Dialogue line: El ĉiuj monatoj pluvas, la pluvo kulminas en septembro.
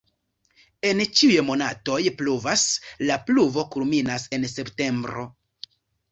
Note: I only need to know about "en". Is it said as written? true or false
true